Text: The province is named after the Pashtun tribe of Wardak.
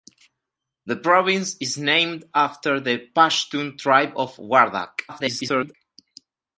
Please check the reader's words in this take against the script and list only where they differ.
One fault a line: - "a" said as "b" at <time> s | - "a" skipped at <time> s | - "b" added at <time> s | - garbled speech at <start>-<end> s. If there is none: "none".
- garbled speech at 5.1-5.7 s